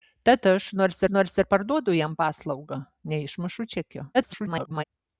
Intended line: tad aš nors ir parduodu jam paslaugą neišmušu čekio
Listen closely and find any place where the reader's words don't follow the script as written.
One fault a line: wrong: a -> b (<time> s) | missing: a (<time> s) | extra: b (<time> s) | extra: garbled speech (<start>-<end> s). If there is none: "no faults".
extra: nors (1.1 s)
extra: garbled speech (4.1-4.8 s)